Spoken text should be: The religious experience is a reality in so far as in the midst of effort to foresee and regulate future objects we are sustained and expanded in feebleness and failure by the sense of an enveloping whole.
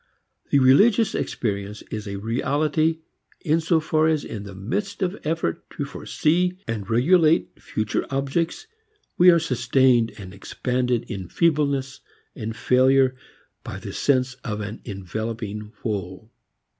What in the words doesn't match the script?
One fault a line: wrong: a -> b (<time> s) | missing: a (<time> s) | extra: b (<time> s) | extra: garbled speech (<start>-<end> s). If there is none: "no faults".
no faults